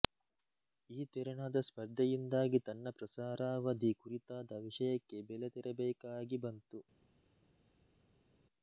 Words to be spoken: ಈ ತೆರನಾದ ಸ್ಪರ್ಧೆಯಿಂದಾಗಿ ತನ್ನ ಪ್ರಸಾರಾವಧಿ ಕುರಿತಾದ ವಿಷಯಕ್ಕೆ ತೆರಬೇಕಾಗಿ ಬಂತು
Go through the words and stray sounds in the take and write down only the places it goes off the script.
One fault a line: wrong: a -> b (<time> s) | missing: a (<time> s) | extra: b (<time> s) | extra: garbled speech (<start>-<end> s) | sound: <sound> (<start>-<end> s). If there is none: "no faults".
extra: ಬೆಲೆ (5.3 s)